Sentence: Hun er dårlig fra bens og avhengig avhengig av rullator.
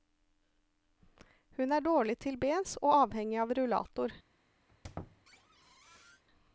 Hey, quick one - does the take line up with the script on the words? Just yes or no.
no